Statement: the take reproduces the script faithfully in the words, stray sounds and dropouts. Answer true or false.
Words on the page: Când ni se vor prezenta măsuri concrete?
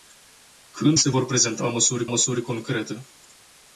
false